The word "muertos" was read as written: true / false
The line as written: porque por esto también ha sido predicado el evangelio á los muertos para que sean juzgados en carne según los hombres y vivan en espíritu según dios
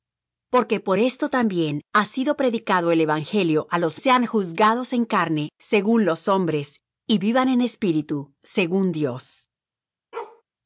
false